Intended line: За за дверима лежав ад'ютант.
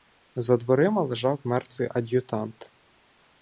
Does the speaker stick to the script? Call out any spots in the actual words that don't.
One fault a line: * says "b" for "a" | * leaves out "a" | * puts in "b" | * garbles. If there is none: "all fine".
* leaves out "за"
* puts in "мертвий"